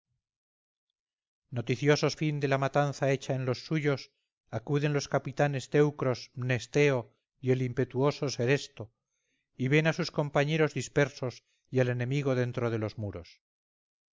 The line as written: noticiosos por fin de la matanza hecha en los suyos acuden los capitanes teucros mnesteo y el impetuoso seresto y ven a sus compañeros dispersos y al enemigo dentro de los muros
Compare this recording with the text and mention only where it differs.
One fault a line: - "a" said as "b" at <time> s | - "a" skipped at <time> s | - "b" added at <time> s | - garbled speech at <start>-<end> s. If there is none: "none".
- "por" skipped at 2.1 s